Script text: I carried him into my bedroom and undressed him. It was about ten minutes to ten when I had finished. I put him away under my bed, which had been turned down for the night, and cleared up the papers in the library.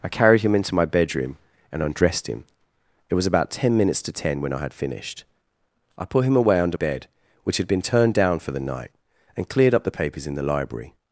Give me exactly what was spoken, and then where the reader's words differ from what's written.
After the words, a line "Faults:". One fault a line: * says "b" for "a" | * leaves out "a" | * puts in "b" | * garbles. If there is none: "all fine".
I carried him into my bedroom and undressed him. It was about ten minutes to ten when I had finished. I put him away under bed, which had been turned down for the night, and cleared up the papers in the library.
Faults:
* leaves out "my"